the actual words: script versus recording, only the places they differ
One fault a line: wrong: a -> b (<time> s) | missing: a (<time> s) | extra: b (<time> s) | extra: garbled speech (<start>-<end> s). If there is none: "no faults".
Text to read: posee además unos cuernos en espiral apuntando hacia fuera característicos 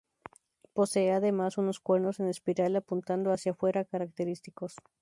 no faults